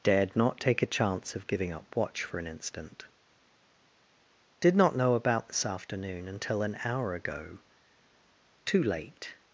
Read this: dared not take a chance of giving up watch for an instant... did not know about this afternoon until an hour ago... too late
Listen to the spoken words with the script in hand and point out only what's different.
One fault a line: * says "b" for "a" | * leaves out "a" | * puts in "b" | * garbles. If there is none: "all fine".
all fine